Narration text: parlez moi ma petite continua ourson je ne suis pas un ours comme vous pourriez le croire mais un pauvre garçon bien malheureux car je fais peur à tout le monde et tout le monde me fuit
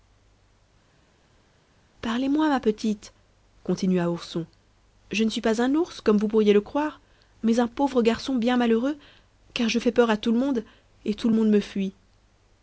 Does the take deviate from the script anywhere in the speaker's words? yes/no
no